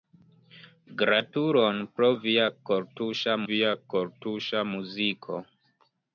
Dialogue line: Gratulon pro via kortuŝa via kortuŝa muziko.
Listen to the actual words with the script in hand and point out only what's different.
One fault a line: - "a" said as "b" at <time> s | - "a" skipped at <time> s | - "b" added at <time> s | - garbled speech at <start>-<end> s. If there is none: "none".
none